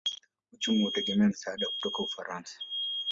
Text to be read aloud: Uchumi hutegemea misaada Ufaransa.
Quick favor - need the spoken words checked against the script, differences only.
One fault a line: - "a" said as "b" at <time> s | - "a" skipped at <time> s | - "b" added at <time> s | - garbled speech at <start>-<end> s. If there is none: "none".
- "kutoka" added at 1.7 s